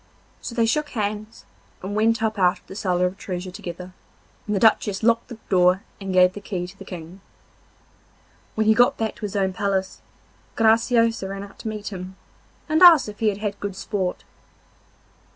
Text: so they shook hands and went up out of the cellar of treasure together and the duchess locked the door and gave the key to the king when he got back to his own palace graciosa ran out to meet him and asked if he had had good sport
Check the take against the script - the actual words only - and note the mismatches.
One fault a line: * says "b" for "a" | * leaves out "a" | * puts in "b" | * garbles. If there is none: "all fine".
all fine